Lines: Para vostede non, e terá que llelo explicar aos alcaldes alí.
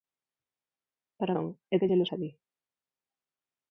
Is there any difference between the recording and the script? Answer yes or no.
yes